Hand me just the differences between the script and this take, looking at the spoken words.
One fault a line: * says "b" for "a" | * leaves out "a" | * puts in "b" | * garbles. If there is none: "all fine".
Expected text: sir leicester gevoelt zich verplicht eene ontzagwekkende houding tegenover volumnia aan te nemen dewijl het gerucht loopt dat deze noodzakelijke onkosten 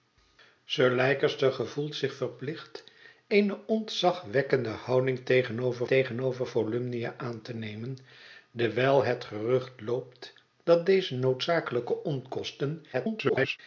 * puts in "tegenover"
* garbles